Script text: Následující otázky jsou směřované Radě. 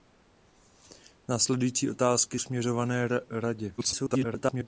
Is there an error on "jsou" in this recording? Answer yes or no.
yes